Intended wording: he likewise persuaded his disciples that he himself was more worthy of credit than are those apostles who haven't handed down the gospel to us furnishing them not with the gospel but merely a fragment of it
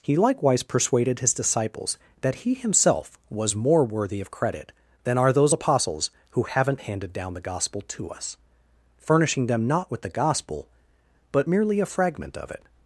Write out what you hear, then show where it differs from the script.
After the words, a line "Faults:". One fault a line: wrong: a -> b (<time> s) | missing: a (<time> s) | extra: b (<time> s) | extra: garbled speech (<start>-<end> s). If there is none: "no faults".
he likewise persuaded his disciples that he himself was more worthy of credit than are those apostles who haven't handed down the gospel to us furnishing them not with the gospel but merely a fragment of it
Faults:
no faults